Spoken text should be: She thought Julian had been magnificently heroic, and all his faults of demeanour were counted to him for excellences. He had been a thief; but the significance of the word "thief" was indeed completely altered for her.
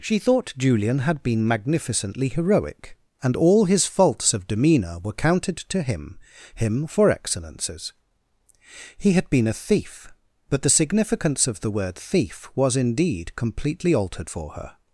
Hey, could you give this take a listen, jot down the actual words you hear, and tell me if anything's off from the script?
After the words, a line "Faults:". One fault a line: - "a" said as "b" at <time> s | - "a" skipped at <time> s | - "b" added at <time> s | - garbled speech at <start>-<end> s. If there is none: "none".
She thought Julian had been magnificently heroic, and all his faults of demeanour were counted to him him for excellences. He had been a thief; but the significance of the word "thief" was indeed completely altered for her.
Faults:
- "him" added at 6.5 s